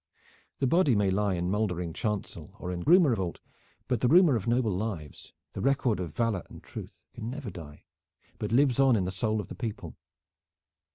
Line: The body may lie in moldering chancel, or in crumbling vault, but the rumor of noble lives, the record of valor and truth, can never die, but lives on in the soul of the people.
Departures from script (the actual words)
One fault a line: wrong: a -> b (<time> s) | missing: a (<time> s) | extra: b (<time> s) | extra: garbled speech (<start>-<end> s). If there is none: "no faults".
wrong: crumbling -> rumor (2.8 s)